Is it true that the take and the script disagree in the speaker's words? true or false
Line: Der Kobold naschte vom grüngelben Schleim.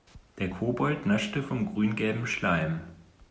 false